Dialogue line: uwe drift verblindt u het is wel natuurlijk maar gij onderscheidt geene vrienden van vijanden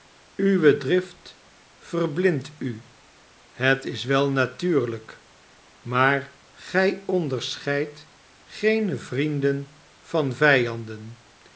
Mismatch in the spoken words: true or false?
false